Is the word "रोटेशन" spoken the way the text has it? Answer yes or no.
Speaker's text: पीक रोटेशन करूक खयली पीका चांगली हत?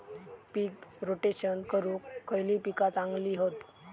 yes